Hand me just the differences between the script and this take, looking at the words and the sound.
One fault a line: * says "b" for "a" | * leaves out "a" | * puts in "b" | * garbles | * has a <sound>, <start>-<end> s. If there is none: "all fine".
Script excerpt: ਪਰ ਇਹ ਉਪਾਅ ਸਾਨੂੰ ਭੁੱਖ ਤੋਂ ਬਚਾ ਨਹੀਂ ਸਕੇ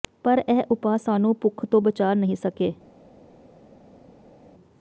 all fine